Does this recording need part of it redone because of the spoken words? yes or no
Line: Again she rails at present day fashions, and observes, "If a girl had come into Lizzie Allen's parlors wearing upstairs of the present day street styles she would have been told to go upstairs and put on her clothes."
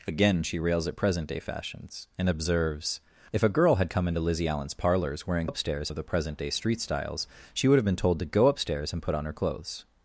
no